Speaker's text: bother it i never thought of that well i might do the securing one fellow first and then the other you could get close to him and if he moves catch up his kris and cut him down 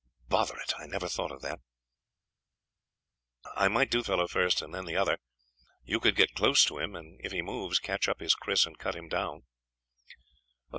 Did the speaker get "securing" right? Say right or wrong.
wrong